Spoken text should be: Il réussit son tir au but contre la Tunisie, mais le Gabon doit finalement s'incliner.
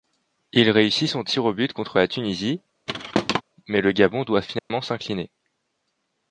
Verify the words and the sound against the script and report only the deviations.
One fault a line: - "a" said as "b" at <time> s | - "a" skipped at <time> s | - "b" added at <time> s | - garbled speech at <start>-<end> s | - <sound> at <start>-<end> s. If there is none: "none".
- thud at 2.9-3.4 s
- dropout at 4.6-4.7 s